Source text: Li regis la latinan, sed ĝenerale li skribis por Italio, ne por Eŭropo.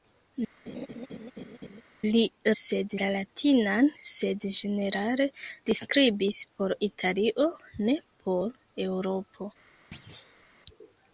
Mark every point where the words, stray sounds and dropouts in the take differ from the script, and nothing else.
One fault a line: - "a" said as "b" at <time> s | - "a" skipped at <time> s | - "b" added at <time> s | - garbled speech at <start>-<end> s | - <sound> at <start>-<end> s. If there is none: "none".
- laugh at 0.7-1.8 s
- "regis" said as "sed" at 2.6 s
- thud at 9.9-10.5 s